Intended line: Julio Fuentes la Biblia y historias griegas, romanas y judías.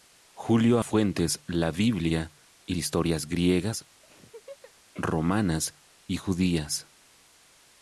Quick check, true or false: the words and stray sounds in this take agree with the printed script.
false